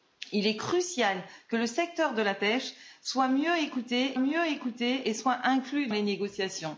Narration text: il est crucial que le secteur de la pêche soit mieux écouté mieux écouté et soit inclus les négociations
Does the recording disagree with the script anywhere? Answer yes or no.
no